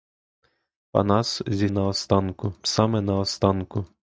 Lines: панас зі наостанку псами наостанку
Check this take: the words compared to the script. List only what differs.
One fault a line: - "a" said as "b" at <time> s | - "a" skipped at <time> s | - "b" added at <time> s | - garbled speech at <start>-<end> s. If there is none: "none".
none